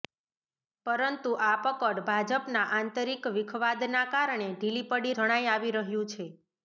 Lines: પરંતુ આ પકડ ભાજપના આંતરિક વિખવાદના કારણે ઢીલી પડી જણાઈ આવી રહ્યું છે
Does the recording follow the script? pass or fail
pass